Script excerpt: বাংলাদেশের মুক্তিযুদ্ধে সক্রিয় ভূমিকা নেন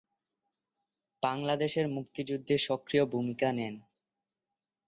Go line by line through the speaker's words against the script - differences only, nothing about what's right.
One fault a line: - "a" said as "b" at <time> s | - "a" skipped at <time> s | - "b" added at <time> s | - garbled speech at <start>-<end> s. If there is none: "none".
none